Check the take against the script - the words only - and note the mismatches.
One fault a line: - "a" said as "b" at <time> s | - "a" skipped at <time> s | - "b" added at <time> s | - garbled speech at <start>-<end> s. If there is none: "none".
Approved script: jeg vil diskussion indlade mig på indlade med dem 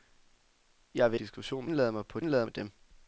none